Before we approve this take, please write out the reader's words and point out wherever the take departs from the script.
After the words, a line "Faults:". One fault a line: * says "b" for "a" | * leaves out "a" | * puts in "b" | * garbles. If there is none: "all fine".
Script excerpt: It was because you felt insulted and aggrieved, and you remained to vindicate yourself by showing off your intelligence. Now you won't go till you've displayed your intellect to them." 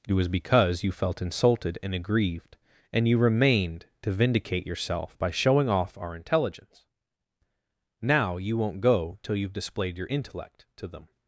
It was because you felt insulted and aggrieved, and you remained to vindicate yourself by showing off our intelligence. Now you won't go till you've displayed your intellect to them."
Faults:
* says "our" for "your"